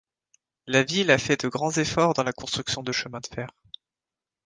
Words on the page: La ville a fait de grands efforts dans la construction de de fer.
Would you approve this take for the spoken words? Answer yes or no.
no